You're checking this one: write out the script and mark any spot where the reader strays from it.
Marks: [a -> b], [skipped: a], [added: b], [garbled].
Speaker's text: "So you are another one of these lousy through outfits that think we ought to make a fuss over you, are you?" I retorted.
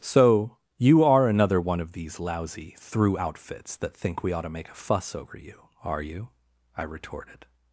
"So you are another one of these lousy through outfits that think we ought to make a fuss over you, are you?" I retorted.